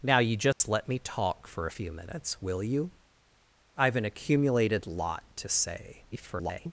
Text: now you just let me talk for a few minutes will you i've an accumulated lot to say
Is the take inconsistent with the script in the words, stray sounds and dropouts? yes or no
yes